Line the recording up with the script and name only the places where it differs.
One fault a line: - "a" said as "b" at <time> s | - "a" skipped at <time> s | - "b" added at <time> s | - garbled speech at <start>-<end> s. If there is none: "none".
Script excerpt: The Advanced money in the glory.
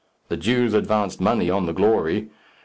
- "Jews" added at 0.4 s
- "in" said as "on" at 1.5 s